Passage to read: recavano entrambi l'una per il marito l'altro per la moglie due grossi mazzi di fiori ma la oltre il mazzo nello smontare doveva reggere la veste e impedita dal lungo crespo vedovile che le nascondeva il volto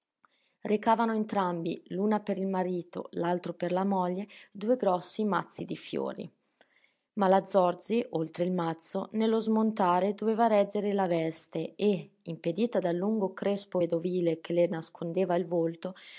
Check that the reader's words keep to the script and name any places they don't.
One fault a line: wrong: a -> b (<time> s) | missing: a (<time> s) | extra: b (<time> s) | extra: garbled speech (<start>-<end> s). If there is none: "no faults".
extra: zorzi (7.4 s)